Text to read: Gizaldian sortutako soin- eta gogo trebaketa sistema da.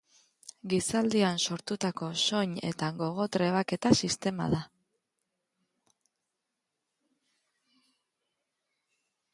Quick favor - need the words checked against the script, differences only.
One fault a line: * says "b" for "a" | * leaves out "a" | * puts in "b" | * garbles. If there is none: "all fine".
all fine